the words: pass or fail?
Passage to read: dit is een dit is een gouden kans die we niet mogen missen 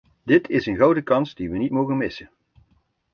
fail